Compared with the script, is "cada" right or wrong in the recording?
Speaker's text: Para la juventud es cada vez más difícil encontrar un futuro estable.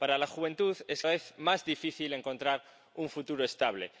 wrong